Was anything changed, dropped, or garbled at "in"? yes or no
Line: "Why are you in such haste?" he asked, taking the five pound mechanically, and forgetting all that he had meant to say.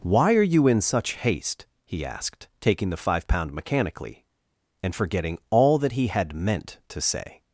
no